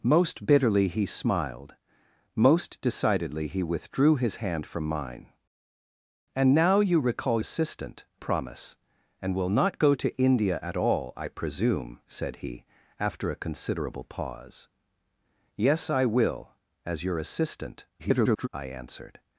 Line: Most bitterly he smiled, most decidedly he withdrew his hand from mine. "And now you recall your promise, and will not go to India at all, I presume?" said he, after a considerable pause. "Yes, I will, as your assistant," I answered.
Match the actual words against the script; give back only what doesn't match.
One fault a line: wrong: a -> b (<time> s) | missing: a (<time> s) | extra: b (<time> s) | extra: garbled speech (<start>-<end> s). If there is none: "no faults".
wrong: your -> assistant (7.4 s)
extra: garbled speech (18.0-18.5 s)